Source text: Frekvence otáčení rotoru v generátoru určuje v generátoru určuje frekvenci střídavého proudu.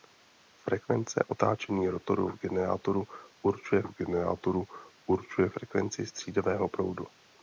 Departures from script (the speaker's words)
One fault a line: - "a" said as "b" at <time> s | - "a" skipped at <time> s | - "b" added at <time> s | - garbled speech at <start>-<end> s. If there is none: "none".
none